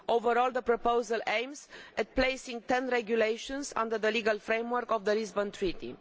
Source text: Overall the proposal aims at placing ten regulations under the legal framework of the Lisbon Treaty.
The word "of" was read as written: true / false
true